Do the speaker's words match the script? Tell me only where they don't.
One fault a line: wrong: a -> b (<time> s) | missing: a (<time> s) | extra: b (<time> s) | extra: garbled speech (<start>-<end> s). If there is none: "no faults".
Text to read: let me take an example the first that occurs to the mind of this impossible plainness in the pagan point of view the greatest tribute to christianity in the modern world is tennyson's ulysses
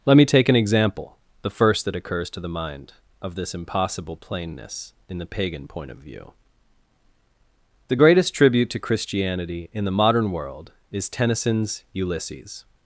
no faults